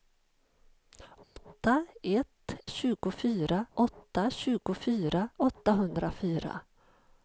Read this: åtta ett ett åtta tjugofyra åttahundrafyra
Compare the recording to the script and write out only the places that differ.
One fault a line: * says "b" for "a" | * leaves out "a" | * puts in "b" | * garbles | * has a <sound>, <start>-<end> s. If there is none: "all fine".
* has a dropout, 1.2-1.4 s
* says "tjugofyra" for "ett"